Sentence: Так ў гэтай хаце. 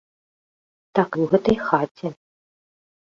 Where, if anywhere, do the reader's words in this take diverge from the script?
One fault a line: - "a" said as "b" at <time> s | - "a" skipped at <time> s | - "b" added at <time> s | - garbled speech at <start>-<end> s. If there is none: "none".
none